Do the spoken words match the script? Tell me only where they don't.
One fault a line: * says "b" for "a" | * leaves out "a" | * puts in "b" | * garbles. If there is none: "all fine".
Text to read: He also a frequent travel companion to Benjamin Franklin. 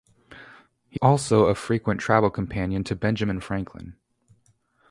all fine